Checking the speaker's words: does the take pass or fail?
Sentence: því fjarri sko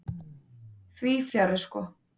pass